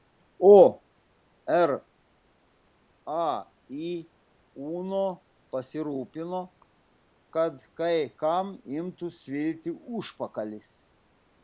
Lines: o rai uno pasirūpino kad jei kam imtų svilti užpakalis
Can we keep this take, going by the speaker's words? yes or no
no